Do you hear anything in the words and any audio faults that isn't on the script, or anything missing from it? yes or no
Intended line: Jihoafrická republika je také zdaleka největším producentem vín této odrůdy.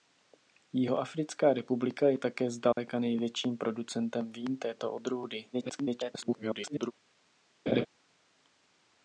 yes